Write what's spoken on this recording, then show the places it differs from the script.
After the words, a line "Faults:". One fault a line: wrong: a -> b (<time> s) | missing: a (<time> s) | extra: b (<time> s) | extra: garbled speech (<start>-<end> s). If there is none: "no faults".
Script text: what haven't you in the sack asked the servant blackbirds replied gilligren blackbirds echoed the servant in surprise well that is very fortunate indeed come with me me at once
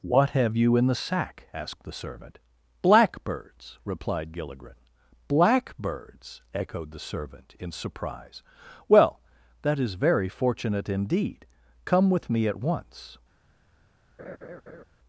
what have you in the sack asked the servant blackbirds replied gilligren blackbirds echoed the servant in surprise well that is very fortunate indeed come with me at once
Faults:
wrong: haven't -> have (0.3 s)
missing: me (12.5 s)